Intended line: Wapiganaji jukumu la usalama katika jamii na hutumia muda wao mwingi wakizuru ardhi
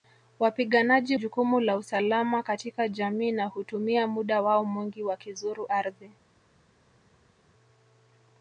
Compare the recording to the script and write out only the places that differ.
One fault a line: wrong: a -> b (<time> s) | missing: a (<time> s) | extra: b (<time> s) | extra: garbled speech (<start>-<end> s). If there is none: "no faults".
no faults